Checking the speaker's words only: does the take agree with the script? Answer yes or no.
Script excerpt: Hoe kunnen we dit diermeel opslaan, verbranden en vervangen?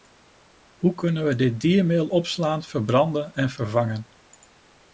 yes